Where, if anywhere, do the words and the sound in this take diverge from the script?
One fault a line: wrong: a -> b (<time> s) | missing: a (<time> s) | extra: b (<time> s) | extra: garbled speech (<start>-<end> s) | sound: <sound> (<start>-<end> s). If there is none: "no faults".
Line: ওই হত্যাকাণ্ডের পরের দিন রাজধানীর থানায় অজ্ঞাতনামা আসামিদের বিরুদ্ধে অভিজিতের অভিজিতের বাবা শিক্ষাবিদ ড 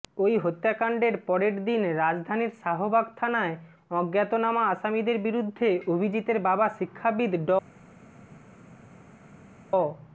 extra: শাহবাগ (2.6 s)
missing: অভিজিতের (6.4 s)